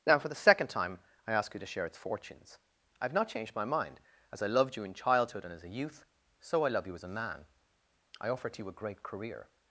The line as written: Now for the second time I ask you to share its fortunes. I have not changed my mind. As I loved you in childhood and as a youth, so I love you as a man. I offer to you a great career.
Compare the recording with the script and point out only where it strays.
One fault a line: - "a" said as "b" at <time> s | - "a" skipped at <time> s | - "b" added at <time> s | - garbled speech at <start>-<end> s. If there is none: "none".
none